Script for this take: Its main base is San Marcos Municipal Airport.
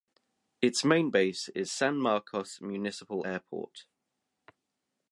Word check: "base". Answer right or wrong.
right